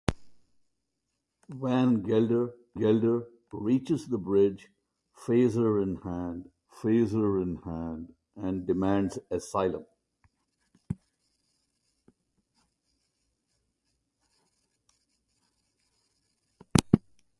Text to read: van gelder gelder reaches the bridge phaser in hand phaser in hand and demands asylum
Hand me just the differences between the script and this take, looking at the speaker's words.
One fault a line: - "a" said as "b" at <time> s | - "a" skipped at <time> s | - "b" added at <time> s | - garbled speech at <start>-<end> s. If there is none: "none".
none